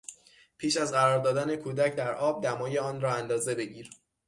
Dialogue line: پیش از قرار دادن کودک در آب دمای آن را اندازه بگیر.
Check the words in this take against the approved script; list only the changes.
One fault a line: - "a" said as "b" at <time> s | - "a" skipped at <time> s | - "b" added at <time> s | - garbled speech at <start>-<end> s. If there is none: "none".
none